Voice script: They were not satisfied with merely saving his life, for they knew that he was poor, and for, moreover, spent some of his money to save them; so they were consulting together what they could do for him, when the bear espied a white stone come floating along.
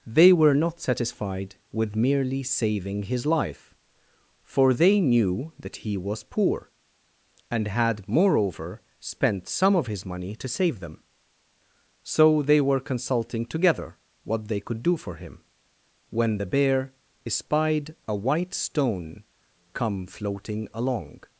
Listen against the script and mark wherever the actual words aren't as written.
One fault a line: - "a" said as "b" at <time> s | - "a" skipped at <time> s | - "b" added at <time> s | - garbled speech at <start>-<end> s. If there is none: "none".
- "for" said as "had" at 7.7 s